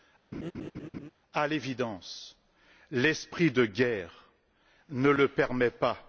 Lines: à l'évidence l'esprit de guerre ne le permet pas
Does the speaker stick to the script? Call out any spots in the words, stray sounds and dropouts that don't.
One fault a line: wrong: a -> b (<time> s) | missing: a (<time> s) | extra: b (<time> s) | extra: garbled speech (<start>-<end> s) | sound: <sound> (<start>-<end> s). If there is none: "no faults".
sound: laugh (0.3-1.1 s)